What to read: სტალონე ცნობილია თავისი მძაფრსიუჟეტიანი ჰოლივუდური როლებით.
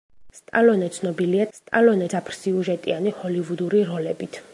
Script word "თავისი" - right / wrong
wrong